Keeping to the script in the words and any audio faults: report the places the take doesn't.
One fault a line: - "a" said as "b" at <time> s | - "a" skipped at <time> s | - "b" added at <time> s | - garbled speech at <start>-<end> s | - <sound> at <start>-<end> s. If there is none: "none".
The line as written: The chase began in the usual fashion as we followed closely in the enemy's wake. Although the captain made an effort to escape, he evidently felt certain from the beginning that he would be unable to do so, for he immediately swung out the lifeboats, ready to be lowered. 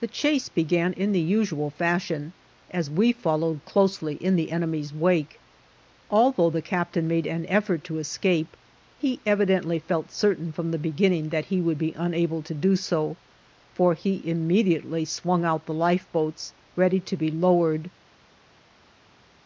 none